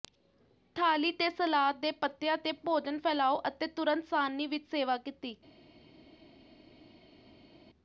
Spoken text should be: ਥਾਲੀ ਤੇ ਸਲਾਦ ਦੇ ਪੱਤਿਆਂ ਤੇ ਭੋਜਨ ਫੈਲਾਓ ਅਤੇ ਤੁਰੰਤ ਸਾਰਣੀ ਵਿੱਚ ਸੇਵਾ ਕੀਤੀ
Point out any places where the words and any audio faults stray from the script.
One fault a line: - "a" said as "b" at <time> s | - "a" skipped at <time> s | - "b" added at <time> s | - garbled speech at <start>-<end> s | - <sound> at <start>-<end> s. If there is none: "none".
none